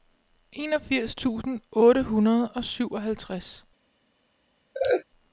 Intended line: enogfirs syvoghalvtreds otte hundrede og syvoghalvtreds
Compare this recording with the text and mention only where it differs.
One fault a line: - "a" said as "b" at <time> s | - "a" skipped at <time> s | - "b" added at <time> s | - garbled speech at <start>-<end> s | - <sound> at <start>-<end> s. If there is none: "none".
- "syvoghalvtreds" said as "tusind" at 1.1 s
- laugh at 4.7-5.0 s